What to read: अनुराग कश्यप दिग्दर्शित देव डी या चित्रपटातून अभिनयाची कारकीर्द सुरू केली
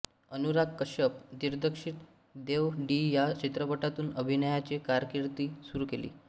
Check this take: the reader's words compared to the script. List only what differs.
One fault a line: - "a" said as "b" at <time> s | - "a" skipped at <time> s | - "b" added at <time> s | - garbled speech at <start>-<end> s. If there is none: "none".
none